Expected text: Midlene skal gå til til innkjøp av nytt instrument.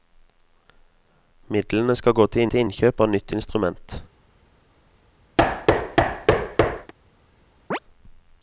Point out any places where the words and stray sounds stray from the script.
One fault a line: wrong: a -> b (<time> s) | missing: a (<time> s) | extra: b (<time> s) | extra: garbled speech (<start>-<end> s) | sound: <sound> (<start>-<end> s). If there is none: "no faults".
sound: thud (5.4-6.9 s)
sound: chirp (7.7-7.8 s)